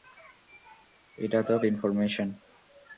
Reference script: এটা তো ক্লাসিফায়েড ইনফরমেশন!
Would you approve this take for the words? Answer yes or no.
no